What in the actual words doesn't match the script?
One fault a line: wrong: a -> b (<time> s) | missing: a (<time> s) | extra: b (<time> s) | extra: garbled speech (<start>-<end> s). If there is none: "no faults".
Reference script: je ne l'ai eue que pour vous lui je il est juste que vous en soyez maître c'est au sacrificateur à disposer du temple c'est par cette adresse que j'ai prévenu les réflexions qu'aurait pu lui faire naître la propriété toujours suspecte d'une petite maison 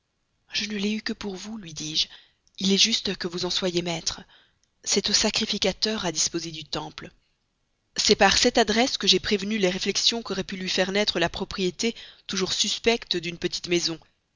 extra: dis (1.8 s)